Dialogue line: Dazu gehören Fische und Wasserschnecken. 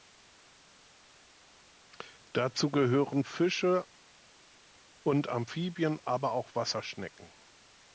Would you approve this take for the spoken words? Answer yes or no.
no